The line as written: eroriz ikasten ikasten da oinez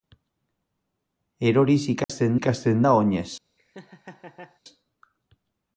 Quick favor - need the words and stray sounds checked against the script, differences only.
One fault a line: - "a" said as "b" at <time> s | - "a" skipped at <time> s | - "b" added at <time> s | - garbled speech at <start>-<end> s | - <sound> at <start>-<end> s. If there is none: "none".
- dropout at 2.0-2.1 s
- laugh at 3.6-4.6 s